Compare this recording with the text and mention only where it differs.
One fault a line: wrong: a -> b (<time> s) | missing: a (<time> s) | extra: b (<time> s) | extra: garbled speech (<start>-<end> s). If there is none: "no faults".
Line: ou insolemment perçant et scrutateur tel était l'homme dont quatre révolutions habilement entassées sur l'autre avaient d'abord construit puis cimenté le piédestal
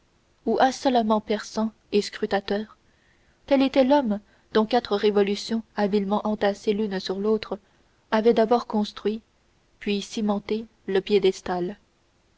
extra: l'une (6.7 s)